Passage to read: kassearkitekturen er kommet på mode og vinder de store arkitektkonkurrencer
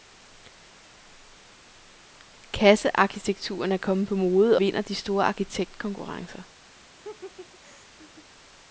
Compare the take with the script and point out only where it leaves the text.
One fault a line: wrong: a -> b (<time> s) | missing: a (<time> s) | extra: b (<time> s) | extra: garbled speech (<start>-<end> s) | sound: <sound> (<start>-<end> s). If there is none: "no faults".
missing: og (4.6 s)
sound: laugh (7.0-8.3 s)